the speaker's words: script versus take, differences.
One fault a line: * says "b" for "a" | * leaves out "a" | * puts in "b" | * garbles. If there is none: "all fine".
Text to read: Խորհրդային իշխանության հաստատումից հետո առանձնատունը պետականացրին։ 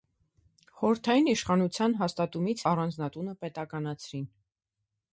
* leaves out "հետո"